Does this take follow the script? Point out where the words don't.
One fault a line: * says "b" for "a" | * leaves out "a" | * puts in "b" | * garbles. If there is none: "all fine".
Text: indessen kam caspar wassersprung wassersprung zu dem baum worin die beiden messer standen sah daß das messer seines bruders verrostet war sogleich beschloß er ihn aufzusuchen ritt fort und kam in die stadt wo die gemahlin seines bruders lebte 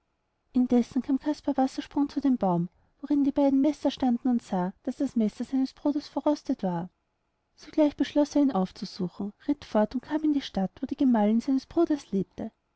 * leaves out "wassersprung"
* puts in "und"